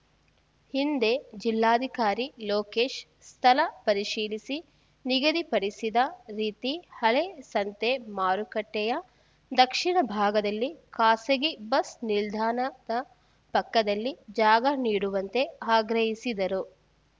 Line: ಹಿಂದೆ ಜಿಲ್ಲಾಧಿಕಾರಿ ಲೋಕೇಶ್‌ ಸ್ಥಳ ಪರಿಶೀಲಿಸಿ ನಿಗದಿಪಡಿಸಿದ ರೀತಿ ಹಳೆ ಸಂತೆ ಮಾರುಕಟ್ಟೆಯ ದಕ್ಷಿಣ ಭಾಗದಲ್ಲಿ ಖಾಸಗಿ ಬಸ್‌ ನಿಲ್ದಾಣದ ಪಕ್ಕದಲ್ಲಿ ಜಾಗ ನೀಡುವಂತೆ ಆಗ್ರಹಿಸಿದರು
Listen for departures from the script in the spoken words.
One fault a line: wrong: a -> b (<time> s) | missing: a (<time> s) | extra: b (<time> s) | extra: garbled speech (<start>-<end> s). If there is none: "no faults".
no faults